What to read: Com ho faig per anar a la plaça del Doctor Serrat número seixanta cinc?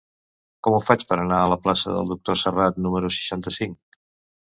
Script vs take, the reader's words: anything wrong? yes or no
no